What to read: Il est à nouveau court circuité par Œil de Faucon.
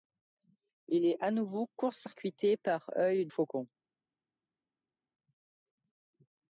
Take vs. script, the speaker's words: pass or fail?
fail